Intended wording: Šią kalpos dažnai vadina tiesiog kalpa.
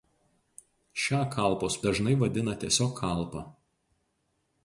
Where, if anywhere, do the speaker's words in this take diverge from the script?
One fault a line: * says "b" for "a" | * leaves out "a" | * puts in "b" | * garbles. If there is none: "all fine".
all fine